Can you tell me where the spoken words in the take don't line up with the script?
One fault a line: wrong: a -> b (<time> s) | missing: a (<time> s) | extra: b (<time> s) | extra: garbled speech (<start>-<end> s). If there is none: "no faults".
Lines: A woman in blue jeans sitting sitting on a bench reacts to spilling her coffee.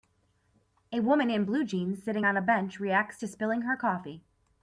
missing: sitting (2.3 s)